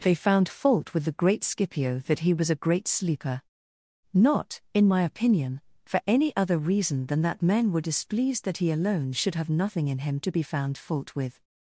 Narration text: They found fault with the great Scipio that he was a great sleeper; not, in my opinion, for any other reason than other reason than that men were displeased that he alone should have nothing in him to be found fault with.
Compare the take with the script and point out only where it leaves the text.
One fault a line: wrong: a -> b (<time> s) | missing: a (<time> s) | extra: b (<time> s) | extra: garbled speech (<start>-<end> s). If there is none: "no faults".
missing: other reason than (7.2 s)